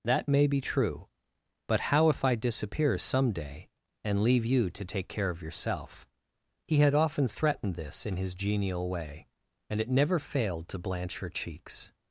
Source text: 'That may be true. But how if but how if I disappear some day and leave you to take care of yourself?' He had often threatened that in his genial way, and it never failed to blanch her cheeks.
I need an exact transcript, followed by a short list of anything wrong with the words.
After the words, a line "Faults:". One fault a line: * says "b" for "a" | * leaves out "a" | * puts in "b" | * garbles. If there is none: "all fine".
'That may be true. But how if I disappear some day and leave you to take care of yourself?' He had often threatened this in his genial way, and it never failed to blanch her cheeks.
Faults:
* leaves out "but how if"
* says "this" for "that"